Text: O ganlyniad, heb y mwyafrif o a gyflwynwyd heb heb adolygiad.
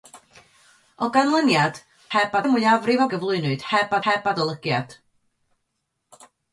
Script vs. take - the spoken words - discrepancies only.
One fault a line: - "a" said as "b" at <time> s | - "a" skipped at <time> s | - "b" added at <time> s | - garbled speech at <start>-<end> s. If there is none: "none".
none